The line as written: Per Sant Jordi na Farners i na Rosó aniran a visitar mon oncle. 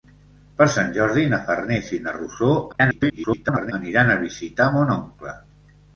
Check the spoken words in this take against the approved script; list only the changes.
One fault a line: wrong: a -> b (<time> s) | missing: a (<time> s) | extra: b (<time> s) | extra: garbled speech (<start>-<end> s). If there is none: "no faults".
extra: garbled speech (2.7-3.7 s)